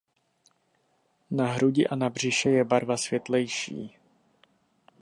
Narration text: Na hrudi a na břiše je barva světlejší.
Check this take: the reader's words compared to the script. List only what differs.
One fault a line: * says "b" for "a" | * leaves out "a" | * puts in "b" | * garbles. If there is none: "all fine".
all fine